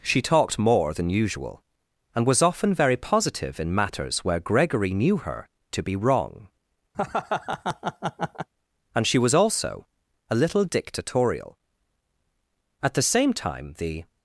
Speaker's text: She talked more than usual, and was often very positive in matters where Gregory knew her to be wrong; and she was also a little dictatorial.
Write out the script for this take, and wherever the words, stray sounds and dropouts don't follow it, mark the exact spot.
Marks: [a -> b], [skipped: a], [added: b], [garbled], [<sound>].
She talked more than usual, and was often very positive in matters where Gregory knew her to be wrong; [laugh] and she was also a little dictatorial. [added: At the same time the]